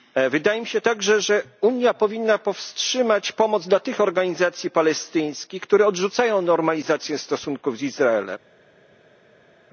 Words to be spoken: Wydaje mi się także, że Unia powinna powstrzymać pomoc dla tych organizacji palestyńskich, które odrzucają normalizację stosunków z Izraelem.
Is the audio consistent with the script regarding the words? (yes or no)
yes